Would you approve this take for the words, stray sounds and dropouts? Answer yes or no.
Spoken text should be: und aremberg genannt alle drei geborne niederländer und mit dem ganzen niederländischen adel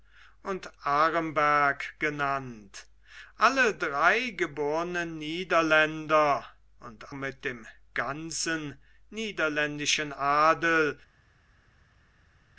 yes